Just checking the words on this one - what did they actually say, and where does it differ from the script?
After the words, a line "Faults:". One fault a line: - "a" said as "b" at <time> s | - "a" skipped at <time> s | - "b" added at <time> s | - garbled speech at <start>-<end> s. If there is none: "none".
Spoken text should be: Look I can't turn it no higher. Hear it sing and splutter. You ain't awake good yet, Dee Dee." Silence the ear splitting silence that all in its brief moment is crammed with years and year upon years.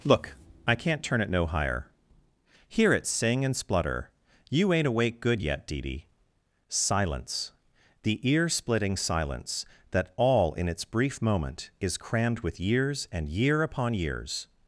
Look I can't turn it no higher. Hear it sing and splutter. You ain't awake good yet, Dee Dee." Silence the ear splitting silence that all in its brief moment is crammed with years and year upon years.
Faults:
none